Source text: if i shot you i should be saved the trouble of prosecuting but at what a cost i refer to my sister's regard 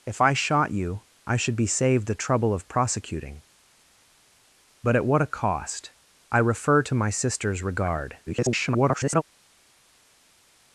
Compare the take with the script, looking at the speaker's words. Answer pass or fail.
fail